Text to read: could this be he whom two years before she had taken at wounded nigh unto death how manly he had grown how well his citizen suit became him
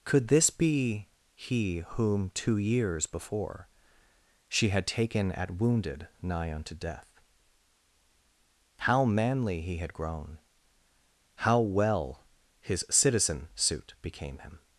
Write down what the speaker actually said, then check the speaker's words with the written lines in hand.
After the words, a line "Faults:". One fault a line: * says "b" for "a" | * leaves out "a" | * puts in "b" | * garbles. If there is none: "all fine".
could this be he whom two years before she had taken at wounded nigh unto death how manly he had grown how well his citizen suit became him
Faults:
all fine